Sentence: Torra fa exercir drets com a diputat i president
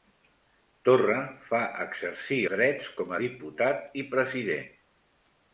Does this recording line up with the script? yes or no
yes